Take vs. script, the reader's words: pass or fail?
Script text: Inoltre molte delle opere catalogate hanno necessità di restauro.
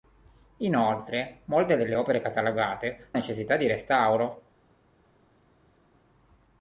fail